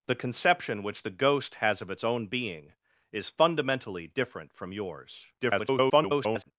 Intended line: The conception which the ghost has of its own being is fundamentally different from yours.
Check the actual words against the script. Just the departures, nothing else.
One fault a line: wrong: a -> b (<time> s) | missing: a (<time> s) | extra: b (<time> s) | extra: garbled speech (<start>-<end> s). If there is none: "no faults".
extra: garbled speech (5.4-6.5 s)